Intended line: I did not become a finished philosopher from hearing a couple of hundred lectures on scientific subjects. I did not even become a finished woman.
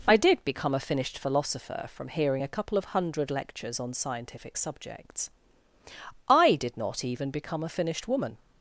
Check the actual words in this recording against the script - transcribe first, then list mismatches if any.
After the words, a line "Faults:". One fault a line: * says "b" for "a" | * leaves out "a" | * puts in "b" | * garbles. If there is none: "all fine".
I did become a finished philosopher from hearing a couple of hundred lectures on scientific subjects. I did not even become a finished woman.
Faults:
* leaves out "not"